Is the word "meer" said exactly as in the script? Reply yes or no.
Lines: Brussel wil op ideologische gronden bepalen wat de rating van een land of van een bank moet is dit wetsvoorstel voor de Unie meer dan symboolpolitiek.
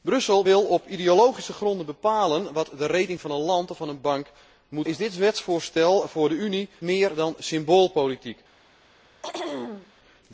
yes